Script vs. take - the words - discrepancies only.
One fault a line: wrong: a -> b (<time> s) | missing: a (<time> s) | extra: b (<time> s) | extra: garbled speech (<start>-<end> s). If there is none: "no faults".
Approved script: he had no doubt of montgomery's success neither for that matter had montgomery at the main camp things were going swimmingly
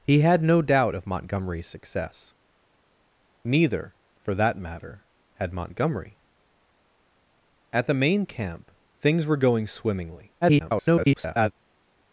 extra: garbled speech (10.4-11.5 s)